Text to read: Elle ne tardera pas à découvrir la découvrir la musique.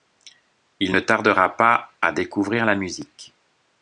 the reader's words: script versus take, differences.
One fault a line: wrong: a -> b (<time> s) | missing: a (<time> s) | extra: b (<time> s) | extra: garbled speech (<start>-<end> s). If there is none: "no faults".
wrong: Elle -> Il (0.8 s)
missing: découvrir la (2.7 s)